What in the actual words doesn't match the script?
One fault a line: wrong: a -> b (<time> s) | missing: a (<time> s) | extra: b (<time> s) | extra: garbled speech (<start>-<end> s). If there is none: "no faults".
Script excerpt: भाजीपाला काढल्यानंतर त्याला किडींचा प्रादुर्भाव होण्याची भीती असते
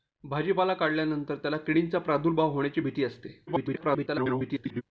extra: garbled speech (3.5-4.8 s)